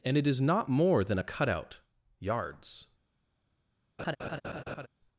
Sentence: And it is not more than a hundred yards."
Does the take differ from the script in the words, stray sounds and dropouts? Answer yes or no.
yes